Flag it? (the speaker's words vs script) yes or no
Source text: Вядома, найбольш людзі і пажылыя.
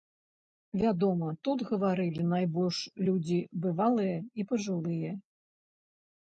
yes